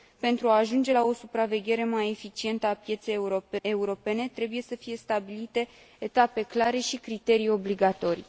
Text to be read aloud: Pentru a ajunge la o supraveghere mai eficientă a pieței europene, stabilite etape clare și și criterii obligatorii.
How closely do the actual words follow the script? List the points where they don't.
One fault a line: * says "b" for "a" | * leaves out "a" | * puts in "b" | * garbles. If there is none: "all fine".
* puts in "trebuie să fie"
* leaves out "și"